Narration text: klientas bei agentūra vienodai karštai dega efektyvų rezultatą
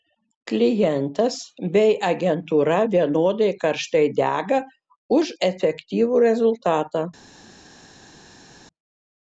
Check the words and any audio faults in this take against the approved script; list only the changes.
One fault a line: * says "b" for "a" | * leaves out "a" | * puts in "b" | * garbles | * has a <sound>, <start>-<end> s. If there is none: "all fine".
* puts in "už"